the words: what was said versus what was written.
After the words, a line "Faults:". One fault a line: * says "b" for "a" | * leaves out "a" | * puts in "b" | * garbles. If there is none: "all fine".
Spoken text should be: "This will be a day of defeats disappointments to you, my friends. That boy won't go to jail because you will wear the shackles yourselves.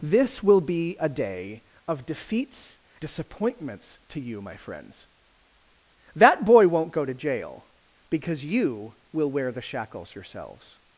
"This will be a day of defeats disappointments to you, my friends. That boy won't go to jail because you will wear the shackles yourselves.
Faults:
all fine